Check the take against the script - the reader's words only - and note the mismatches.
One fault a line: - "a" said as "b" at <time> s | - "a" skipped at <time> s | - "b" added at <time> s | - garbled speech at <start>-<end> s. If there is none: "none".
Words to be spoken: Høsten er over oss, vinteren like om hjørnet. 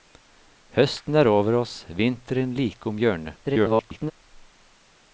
- garbled speech at 3.4-4.1 s